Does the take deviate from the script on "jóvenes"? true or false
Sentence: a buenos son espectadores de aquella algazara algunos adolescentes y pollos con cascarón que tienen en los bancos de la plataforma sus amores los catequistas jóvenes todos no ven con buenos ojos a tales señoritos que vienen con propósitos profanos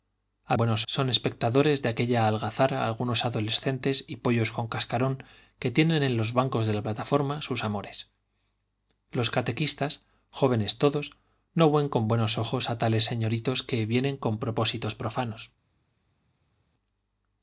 false